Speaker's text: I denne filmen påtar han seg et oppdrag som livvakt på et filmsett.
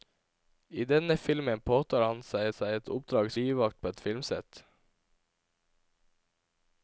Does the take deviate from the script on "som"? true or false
true